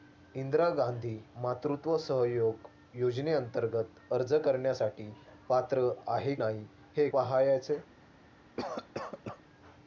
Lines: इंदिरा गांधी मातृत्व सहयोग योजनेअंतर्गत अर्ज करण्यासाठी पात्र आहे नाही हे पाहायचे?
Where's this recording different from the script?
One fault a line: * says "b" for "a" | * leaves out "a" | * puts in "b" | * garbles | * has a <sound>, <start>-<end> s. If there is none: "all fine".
* has a cough, 8.6-9.4 s